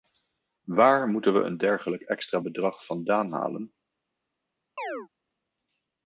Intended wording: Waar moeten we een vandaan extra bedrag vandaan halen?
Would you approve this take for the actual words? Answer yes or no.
no